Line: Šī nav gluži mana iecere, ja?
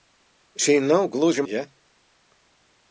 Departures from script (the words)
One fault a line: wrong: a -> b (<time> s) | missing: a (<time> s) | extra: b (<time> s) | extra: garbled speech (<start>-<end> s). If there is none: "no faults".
missing: mana iecere (1.4 s)